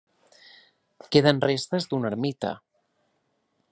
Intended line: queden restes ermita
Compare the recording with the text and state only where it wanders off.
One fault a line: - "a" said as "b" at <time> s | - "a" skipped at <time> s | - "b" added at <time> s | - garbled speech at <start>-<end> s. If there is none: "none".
- "d'una" added at 1.9 s